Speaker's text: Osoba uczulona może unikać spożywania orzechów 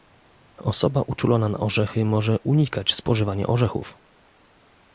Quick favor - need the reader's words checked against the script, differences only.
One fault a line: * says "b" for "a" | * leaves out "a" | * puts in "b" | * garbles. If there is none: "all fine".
* puts in "na orzechy"